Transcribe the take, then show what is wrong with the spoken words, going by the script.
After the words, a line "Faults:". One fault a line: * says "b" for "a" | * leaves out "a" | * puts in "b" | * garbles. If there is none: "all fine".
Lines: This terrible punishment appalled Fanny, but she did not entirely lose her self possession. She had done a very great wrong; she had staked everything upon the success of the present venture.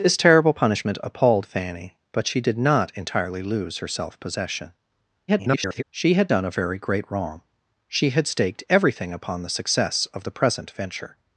This terrible punishment appalled Fanny, but she did not entirely lose her self possession. [garbled] She had done a very great wrong; she had staked everything upon the success of the present venture.
Faults:
* garbles